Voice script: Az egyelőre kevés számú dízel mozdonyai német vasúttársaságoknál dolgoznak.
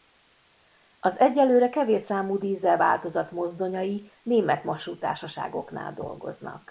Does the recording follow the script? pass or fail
fail